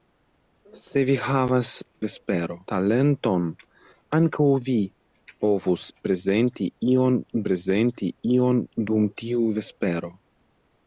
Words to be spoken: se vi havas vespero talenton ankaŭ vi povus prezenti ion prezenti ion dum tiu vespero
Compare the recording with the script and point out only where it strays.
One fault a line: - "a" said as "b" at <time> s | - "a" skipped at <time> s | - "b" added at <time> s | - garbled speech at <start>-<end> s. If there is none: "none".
none